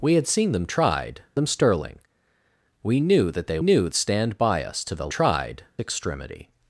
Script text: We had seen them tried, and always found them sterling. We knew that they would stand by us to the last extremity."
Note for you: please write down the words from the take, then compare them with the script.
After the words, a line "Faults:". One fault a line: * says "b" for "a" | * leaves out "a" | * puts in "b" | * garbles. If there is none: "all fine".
We had seen them tried, them sterling. We knew that they knew stand by us to the tried extremity."
Faults:
* leaves out "and always found"
* says "knew" for "would"
* says "tried" for "last"